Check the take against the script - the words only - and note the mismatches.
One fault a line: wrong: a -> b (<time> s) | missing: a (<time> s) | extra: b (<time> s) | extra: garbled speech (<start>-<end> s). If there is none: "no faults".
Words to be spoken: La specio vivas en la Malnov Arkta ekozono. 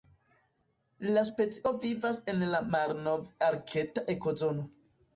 no faults